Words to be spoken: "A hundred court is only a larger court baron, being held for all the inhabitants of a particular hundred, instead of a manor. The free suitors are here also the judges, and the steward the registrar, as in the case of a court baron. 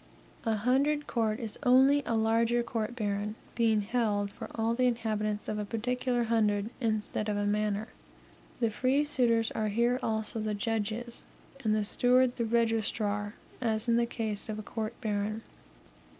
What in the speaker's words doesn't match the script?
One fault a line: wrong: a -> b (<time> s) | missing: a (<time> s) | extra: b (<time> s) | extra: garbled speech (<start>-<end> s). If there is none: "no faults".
no faults